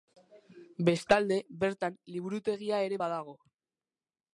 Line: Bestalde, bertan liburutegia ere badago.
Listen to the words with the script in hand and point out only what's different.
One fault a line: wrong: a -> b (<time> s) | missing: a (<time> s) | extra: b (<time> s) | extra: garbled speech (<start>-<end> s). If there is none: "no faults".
no faults